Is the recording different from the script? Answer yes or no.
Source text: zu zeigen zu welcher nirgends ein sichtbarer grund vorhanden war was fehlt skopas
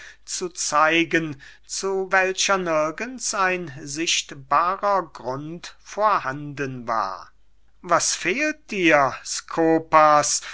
yes